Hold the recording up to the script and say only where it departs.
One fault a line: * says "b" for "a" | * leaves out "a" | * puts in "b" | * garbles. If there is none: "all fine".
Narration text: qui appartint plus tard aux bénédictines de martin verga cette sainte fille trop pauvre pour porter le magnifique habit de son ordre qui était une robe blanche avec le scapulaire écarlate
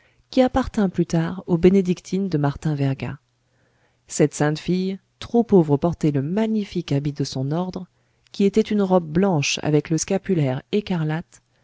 * leaves out "pour"